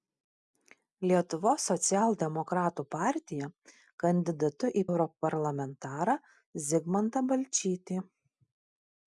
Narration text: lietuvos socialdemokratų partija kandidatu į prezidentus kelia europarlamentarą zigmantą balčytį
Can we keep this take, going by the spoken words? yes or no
no